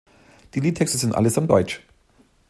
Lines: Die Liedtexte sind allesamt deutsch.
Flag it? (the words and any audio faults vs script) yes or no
no